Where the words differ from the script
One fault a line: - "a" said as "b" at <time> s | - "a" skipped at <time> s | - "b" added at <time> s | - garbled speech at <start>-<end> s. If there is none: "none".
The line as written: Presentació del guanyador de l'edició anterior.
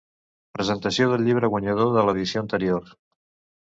- "llibre" added at 1.3 s